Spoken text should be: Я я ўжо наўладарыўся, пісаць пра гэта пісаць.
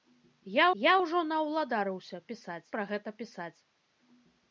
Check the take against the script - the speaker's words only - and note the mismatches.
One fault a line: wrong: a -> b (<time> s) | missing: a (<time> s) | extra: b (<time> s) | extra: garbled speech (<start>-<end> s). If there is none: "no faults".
no faults